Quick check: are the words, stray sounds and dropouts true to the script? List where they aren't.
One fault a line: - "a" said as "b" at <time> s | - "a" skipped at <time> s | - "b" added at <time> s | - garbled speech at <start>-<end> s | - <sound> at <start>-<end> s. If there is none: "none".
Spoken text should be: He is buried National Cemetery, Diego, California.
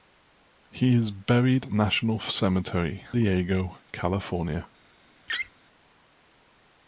- laugh at 5.3-5.5 s